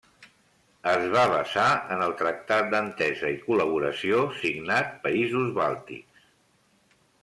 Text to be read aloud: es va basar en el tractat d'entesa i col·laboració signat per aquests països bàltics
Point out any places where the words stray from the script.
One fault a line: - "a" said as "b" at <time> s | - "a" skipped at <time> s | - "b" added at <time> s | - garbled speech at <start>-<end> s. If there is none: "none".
- "per aquests" skipped at 5.0 s